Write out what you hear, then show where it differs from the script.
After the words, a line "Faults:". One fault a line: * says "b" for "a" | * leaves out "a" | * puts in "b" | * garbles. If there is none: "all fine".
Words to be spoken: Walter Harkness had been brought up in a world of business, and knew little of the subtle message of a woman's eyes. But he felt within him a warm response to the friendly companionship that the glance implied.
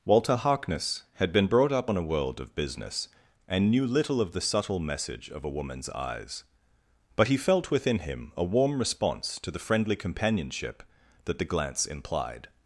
Walter Harkness had been brought up on a world of business, and knew little of the subtle message of a woman's eyes. But he felt within him a warm response to the friendly companionship that the glance implied.
Faults:
* says "on" for "in"